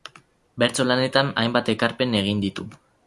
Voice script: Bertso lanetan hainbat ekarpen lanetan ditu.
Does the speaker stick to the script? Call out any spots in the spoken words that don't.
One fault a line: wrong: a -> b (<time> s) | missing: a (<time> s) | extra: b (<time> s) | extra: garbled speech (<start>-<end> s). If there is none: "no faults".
wrong: lanetan -> egin (2.2 s)